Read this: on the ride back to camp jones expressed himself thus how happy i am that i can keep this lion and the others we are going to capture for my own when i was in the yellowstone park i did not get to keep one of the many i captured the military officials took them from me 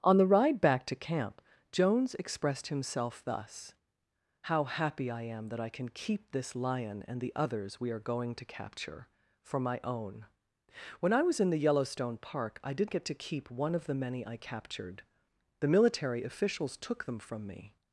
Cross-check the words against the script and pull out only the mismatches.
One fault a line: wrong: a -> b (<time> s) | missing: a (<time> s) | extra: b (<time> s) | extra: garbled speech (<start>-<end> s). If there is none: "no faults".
missing: not (12.9 s)